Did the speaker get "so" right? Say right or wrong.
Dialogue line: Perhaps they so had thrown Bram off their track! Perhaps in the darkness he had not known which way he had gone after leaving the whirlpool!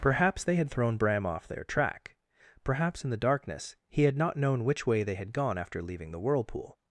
wrong